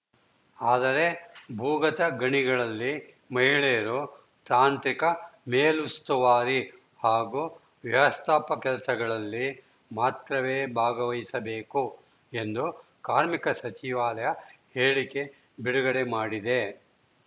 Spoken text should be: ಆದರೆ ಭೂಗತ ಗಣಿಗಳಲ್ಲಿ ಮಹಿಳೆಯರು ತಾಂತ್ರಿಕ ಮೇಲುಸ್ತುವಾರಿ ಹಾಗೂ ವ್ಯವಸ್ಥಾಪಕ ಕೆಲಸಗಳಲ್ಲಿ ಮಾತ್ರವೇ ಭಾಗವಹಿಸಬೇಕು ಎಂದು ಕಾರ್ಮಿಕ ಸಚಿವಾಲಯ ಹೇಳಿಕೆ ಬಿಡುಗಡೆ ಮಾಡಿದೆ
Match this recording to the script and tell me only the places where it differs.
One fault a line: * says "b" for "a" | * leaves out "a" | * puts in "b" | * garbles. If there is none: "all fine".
all fine